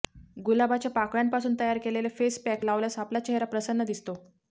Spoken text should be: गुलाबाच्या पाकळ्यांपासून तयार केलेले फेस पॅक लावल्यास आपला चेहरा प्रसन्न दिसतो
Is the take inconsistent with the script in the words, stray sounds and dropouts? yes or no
no